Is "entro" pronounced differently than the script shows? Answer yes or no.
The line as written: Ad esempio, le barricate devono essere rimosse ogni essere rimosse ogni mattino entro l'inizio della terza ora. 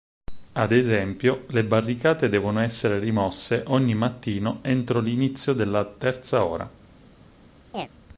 no